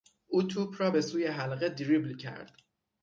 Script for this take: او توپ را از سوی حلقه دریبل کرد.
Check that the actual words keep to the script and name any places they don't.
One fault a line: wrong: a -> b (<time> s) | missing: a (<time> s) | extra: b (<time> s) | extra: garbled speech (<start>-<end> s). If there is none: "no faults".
wrong: از -> به (0.9 s)